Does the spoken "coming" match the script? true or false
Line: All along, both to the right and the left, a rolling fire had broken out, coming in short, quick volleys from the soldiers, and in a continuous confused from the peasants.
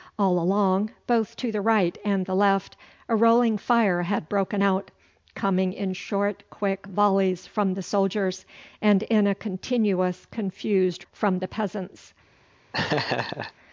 true